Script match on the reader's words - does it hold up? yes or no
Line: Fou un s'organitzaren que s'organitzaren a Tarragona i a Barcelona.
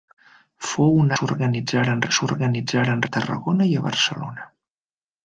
yes